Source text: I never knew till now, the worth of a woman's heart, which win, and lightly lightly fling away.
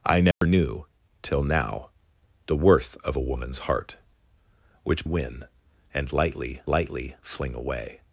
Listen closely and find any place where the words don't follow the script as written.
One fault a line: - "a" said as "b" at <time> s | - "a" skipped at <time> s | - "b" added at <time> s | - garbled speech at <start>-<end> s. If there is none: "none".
none